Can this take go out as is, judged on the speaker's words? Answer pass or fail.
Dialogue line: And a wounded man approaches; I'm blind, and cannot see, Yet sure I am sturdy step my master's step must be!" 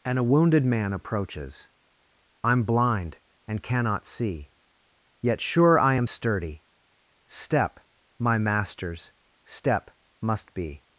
pass